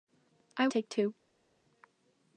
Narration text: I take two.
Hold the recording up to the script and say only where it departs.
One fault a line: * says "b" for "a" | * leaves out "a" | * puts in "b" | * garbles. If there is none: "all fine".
all fine